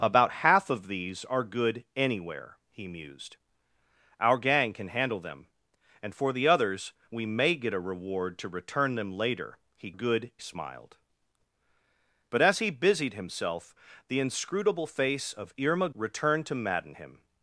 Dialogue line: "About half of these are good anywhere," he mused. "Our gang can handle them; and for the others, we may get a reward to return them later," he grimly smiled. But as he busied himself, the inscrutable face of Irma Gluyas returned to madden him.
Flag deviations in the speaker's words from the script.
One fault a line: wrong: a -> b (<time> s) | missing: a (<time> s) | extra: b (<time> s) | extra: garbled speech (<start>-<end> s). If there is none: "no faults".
wrong: grimly -> good (9.9 s)
missing: Gluyas (15.9 s)